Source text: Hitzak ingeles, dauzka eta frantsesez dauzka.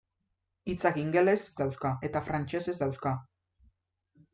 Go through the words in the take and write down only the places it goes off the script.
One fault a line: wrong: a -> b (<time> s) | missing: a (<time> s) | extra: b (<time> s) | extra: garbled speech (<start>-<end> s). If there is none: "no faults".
no faults